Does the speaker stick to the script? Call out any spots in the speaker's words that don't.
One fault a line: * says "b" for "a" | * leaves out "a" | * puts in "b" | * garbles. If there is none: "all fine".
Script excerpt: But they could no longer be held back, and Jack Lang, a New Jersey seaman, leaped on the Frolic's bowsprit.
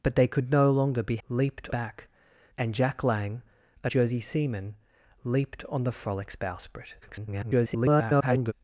* says "leaped" for "held"
* leaves out "New"
* garbles